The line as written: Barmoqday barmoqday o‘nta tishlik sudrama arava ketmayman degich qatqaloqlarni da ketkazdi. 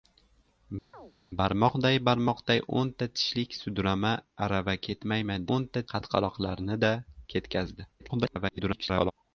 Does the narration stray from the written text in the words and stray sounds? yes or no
yes